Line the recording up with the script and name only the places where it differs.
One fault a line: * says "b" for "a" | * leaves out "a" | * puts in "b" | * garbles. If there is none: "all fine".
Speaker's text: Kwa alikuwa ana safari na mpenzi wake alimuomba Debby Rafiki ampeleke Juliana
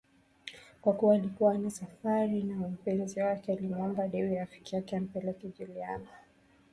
* puts in "kuwa"
* puts in "yake"